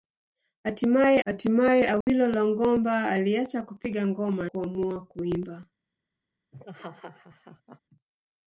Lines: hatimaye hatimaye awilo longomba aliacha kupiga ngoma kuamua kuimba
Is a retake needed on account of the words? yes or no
no